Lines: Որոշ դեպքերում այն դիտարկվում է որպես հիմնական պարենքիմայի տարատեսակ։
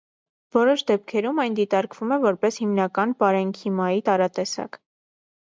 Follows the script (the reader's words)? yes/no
yes